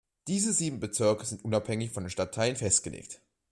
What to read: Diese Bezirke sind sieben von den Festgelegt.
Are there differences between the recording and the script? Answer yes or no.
yes